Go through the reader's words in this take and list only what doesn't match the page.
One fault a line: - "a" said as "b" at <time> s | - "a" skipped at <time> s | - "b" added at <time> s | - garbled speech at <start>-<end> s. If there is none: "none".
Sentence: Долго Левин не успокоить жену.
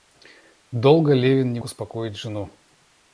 none